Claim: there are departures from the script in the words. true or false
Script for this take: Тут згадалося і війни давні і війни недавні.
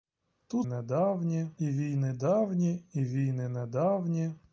true